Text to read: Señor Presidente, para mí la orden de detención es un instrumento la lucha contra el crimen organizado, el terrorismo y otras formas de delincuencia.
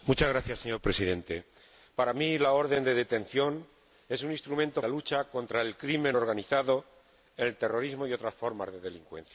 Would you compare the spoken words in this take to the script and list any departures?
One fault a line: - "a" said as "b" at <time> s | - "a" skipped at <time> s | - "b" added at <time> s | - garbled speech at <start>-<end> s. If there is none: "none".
none